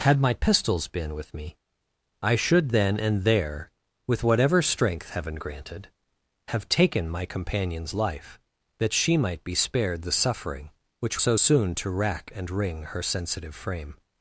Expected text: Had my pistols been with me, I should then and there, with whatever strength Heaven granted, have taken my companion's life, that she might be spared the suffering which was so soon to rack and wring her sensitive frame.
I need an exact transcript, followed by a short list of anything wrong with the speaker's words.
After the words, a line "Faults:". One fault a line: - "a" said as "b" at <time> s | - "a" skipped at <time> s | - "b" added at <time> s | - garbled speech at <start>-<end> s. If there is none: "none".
Had my pistols been with me, I should then and there, with whatever strength Heaven granted, have taken my companion's life, that she might be spared the suffering which so soon to rack and wring her sensitive frame.
Faults:
- "was" skipped at 11.2 s